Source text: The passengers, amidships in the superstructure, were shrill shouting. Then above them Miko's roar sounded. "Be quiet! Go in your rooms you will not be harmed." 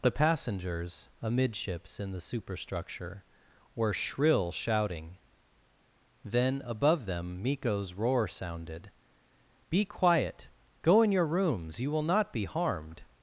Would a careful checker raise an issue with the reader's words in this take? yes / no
no